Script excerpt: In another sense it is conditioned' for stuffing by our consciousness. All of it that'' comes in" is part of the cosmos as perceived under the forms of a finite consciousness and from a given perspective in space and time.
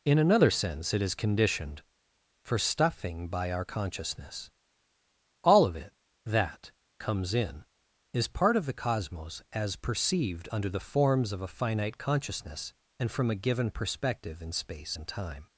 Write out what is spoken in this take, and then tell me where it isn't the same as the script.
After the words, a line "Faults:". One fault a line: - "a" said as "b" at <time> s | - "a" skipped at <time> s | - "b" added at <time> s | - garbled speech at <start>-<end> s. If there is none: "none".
In another sense it is conditioned' for stuffing by our consciousness. All of it that'' comes in" is part of the cosmos as perceived under the forms of a finite consciousness and from a given perspective in space and time.
Faults:
none